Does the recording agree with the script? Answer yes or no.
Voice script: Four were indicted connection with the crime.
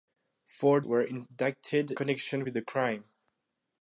yes